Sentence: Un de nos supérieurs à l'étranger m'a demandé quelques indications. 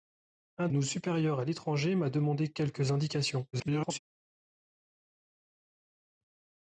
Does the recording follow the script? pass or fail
fail